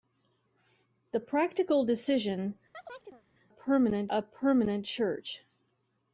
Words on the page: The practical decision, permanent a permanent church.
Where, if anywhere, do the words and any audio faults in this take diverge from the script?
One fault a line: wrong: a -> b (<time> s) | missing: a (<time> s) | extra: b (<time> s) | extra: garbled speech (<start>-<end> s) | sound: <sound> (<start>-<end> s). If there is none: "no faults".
sound: chirp (2.7-3.2 s)